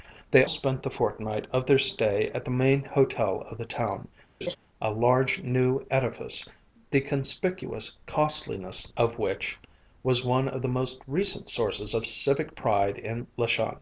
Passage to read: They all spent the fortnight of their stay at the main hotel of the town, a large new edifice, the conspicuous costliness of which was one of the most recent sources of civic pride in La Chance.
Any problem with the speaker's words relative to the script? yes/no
yes